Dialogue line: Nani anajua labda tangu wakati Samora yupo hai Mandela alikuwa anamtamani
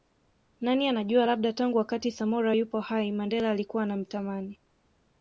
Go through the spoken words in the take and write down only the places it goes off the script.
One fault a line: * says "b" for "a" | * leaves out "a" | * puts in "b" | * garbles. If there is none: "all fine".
all fine